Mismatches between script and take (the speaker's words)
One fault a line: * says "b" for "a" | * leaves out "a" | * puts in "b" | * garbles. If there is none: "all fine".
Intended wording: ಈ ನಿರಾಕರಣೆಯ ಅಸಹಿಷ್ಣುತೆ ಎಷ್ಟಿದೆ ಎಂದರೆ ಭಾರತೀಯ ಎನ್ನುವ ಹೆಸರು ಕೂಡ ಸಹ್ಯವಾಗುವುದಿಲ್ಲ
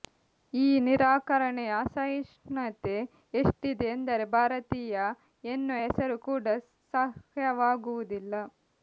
all fine